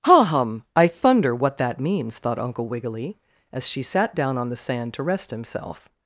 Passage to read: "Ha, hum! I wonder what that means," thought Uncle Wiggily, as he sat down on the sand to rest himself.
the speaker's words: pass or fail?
fail